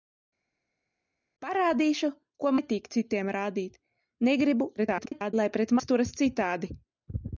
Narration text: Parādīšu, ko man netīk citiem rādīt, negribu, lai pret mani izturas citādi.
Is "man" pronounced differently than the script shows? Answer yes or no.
yes